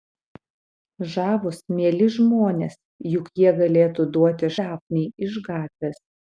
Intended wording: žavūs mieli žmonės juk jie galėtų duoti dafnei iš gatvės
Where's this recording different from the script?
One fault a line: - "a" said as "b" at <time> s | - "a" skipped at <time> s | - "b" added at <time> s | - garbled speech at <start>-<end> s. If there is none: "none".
none